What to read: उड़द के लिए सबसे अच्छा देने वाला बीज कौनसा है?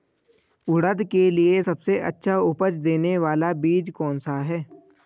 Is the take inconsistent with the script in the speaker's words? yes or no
yes